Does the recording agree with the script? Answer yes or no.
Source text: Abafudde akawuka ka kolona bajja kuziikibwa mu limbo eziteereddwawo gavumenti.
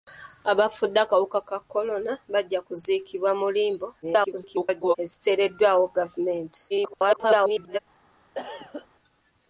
no